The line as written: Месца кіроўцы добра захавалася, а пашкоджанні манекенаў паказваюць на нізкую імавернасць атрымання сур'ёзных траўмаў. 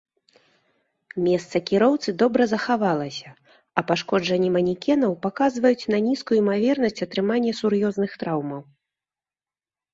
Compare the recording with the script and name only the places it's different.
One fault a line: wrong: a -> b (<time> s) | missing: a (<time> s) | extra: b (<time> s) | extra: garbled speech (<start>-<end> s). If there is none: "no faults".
no faults